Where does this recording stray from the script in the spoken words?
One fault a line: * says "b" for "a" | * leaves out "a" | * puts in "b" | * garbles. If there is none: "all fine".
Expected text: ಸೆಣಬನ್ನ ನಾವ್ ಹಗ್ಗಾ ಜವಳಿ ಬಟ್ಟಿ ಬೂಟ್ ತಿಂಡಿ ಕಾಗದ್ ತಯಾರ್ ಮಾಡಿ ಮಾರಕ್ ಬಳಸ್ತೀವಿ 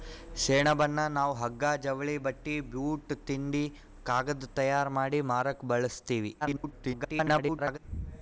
* garbles